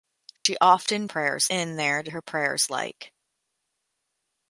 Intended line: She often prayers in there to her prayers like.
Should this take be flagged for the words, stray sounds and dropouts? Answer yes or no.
yes